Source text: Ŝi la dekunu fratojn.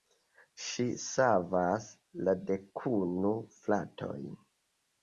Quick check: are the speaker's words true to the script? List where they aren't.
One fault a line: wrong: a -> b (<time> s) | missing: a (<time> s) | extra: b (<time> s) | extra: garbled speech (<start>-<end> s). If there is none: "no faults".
extra: savas (1.0 s)